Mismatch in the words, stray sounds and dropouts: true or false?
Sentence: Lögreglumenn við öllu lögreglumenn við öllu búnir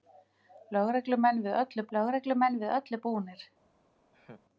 true